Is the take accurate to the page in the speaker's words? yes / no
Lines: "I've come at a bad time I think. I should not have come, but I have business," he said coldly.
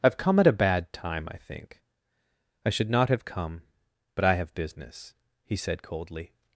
yes